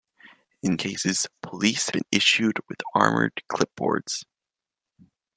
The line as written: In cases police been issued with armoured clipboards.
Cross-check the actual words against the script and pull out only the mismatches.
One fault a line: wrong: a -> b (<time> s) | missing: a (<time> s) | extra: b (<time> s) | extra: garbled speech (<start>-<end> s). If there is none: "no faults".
no faults